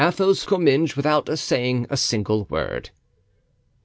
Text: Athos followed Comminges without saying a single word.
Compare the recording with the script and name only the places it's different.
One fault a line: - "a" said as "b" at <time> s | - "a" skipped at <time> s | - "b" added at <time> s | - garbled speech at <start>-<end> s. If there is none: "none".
- "followed" skipped at 0.4 s